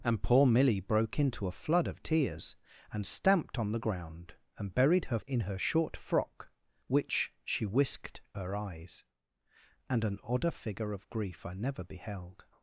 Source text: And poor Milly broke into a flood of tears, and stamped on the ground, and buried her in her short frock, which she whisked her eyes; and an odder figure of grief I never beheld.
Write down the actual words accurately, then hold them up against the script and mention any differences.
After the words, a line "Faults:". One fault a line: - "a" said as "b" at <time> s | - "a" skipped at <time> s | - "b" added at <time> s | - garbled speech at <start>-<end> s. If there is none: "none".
And poor Milly broke into a flood of tears, and stamped on the ground, and buried her in her short frock, which she whisked her eyes; and an odder figure of grief I never beheld.
Faults:
none